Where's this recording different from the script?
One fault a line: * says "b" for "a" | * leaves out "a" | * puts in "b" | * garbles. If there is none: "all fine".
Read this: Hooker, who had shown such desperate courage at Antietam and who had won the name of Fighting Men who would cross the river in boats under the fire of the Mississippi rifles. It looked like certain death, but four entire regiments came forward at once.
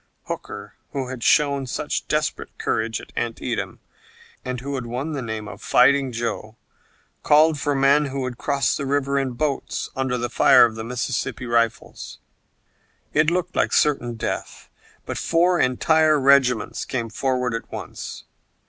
* puts in "Joe called for"